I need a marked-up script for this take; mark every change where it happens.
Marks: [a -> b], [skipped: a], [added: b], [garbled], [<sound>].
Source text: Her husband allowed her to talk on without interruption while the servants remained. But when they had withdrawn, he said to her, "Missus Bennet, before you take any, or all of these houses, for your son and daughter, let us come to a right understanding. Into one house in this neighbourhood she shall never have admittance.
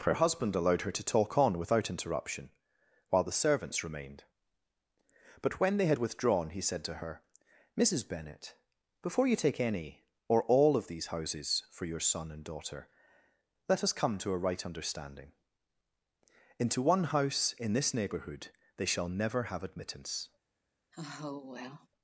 Her husband allowed her to talk on without interruption while the servants remained. But when they had withdrawn, he said to her, "Missus Bennet, before you take any, or all of these houses, for your son and daughter, let us come to a right understanding. Into one house in this neighbourhood [she -> they] shall never have admittance. [sigh]